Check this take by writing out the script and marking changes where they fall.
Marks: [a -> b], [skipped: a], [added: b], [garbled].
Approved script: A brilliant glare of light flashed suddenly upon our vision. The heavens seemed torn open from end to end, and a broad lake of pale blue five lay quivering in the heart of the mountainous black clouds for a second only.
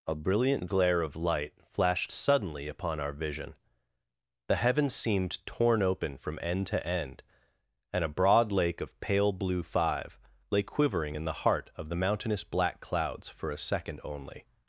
A brilliant glare of light flashed suddenly upon our vision. The heavens seemed torn open from end to end, and a broad lake of pale blue five lay quivering in the heart of the mountainous black clouds for a second only.